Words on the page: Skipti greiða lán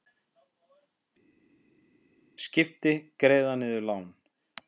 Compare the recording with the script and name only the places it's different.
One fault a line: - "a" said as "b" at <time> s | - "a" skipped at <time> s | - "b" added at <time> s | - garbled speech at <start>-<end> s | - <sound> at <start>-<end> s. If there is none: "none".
- "niður" added at 3.6 s